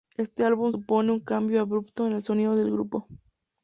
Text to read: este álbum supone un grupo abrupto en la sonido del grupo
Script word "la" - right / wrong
wrong